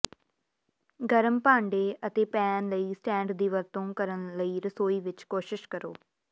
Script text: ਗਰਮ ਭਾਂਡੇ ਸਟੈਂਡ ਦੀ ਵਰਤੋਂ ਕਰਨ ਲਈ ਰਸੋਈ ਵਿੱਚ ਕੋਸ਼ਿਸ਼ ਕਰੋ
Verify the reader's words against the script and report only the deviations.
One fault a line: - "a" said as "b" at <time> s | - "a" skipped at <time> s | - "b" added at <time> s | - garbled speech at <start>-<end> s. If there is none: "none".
- "ਅਤੇ ਪੈਨ ਲਈ" added at 2.1 s